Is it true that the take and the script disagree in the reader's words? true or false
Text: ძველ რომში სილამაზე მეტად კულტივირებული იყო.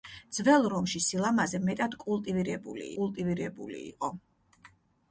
true